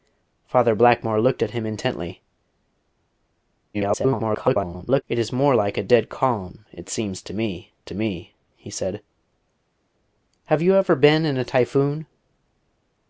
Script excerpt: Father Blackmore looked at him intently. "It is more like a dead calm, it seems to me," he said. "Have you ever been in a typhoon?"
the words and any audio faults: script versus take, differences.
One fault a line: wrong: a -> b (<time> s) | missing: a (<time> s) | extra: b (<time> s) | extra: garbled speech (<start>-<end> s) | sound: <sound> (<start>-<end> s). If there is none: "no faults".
extra: garbled speech (3.7-5.0 s)
extra: to me (7.8 s)